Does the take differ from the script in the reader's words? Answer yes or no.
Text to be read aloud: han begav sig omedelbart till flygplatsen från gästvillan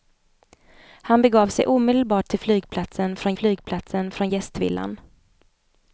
yes